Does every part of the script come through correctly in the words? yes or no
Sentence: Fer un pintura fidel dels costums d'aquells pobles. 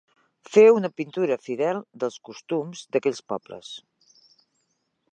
no